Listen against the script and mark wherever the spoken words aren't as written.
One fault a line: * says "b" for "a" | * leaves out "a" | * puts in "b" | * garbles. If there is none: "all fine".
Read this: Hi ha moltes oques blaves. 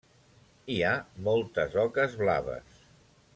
all fine